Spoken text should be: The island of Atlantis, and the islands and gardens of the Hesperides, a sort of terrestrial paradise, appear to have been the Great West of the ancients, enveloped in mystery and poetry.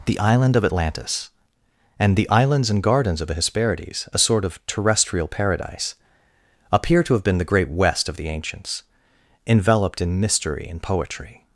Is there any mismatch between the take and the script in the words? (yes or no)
no